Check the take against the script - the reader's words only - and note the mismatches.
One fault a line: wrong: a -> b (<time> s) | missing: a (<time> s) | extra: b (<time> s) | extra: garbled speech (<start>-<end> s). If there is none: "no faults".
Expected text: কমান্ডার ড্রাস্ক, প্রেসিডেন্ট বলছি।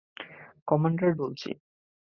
missing: ড্রাস্ক প্রেসিডেন্ট (1.1 s)